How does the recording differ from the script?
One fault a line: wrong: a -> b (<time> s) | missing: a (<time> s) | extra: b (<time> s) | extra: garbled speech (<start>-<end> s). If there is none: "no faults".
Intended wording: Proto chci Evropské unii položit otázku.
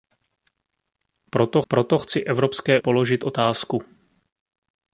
extra: proto (1.7 s)
missing: unii (2.8 s)